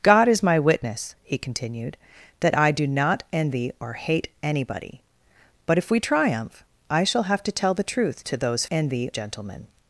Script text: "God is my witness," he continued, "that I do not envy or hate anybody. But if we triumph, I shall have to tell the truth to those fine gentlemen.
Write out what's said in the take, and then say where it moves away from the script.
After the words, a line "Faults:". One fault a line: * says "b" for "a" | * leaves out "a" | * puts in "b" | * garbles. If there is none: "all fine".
"God is my witness," he continued, "that I do not envy or hate anybody. But if we triumph, I shall have to tell the truth to those envy gentlemen.
Faults:
* says "envy" for "fine"